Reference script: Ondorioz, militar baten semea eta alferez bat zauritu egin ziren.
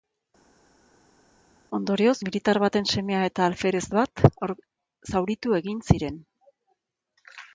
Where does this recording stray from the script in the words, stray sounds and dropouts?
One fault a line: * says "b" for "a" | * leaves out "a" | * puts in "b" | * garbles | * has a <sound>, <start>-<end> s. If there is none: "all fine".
all fine